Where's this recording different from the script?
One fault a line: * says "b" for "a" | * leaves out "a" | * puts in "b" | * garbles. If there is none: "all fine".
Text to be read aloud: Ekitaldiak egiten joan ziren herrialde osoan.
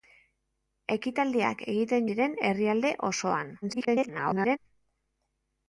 * leaves out "joan"
* garbles